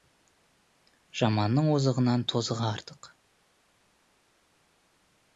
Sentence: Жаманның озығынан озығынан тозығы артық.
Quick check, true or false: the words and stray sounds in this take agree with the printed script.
false